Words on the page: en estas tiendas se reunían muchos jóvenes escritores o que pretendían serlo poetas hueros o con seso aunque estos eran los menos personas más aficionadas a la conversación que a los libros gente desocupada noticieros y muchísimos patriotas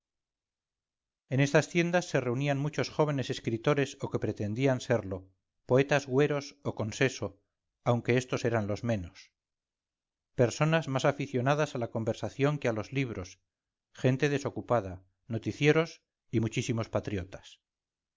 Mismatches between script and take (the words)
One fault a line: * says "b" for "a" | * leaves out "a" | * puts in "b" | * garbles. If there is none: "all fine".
all fine